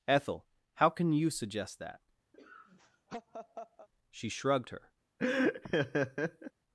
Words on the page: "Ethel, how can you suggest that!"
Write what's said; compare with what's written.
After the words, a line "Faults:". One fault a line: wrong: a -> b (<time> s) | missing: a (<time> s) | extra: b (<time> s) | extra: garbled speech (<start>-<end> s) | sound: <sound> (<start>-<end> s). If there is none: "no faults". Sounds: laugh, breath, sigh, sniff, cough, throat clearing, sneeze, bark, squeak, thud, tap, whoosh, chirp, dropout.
"Ethel, how can you suggest that!" She shrugged her
Faults:
sound: laugh (2.3-3.9 s)
extra: She shrugged her (4.1 s)
sound: laugh (5.2-6.5 s)